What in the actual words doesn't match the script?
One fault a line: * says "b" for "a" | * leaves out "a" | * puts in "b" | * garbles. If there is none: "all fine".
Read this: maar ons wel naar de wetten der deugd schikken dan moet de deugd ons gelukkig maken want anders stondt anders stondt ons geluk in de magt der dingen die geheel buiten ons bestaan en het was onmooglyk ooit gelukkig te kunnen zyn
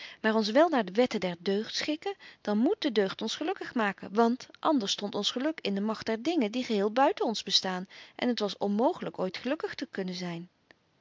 * leaves out "anders stondt"